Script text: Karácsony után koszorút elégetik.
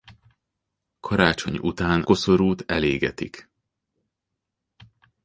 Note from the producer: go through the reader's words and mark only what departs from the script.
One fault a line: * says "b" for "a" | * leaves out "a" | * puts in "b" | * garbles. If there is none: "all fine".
all fine